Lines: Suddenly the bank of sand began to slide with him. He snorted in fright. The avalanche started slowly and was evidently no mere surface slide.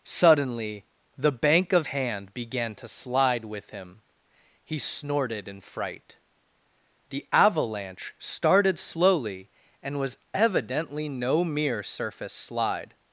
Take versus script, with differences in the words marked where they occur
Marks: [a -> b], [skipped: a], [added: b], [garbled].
Suddenly the bank of [sand -> hand] began to slide with him. He snorted in fright. The avalanche started slowly and was evidently no mere surface slide.